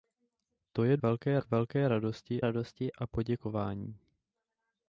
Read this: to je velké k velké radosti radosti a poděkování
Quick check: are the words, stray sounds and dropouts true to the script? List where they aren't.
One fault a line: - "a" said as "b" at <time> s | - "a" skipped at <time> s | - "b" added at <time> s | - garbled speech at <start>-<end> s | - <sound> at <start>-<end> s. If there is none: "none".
none